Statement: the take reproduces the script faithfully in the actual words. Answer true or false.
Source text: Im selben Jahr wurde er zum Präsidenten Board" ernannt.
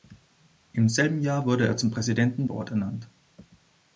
true